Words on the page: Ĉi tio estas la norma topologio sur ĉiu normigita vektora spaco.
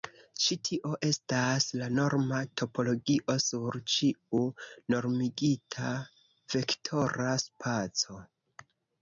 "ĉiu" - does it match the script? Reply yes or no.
yes